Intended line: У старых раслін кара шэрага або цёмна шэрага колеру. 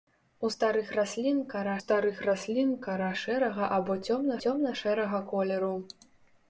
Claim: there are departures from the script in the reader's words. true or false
true